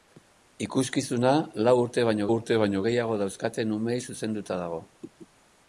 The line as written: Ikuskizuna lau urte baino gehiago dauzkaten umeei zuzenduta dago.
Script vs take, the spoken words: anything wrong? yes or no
yes